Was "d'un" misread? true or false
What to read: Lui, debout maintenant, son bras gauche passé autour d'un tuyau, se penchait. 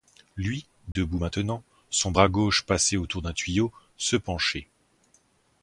false